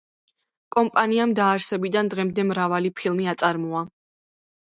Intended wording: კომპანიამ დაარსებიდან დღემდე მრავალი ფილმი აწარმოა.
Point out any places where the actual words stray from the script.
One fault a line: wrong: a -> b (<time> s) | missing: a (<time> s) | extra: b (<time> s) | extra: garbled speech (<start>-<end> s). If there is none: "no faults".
no faults